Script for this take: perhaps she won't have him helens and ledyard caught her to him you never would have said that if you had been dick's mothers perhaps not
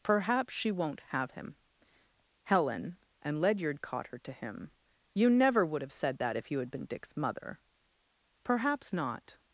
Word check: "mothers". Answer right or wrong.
wrong